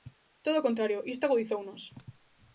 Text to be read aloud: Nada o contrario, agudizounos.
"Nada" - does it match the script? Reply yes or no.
no